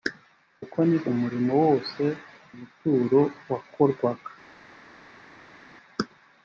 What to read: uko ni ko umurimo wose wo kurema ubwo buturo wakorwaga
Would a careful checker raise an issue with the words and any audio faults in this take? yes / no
yes